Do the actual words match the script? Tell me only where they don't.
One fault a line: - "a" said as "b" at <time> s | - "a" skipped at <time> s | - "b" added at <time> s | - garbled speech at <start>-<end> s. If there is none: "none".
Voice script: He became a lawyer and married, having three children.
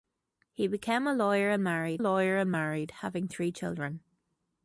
- "lawyer and married" added at 2.0 s